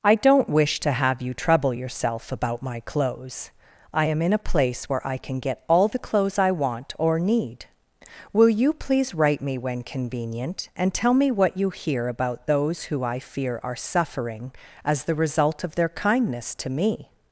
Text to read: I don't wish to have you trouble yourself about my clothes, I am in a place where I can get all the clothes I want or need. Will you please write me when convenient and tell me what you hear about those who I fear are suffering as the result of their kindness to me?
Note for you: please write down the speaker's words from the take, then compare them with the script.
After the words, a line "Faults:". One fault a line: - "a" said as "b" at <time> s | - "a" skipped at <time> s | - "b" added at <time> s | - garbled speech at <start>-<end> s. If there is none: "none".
I don't wish to have you trouble yourself about my clothes, I am in a place where I can get all the clothes I want or need. Will you please write me when convenient and tell me what you hear about those who I fear are suffering as the result of their kindness to me?
Faults:
none